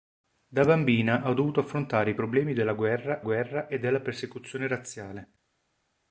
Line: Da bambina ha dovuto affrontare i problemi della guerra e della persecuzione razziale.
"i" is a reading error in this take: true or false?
false